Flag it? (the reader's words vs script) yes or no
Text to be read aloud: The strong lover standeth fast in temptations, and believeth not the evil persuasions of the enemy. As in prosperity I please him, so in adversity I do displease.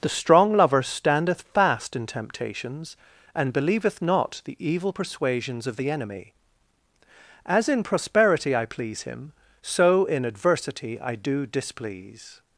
no